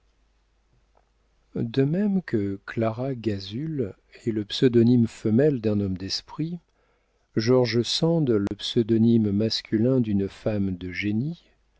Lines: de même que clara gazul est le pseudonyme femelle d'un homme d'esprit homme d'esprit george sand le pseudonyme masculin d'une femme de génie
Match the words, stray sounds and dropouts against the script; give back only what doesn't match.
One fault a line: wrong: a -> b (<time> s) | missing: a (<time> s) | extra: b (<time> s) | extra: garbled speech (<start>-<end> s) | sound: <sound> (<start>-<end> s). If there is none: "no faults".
missing: homme d'esprit (6.6 s)
sound: dropout (8.5-8.5 s)